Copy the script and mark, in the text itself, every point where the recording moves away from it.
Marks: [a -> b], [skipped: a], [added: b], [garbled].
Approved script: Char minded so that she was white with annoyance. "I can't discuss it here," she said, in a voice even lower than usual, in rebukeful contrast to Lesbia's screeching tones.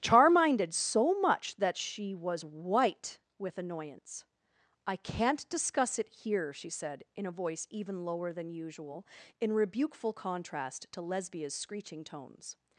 Char minded so [added: much] that she was white with annoyance. "I can't discuss it here," she said, in a voice even lower than usual, in rebukeful contrast to Lesbia's screeching tones.